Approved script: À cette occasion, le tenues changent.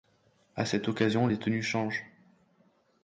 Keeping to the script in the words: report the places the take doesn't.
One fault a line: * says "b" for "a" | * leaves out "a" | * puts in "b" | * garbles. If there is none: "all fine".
* says "les" for "le"